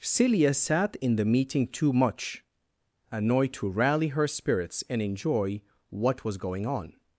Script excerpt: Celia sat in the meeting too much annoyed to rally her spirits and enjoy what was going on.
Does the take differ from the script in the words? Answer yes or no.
no